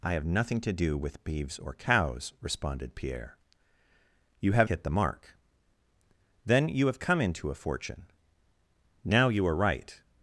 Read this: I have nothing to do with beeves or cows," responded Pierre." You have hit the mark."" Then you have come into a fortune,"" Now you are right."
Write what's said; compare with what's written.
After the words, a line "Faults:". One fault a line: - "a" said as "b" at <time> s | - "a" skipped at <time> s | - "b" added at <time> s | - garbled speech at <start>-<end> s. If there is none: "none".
I have nothing to do with beeves or cows," responded Pierre." You have hit the mark."" Then you have come into a fortune,"" Now you are right."
Faults:
none